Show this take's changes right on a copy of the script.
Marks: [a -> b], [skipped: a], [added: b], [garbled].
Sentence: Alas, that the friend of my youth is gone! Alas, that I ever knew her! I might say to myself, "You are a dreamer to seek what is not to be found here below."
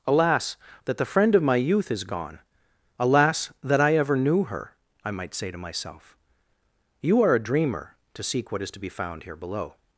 Alas, that the friend of my youth is gone! Alas, that I ever knew her! I might say to myself, "You are a dreamer to seek what is [skipped: not] to be found here below."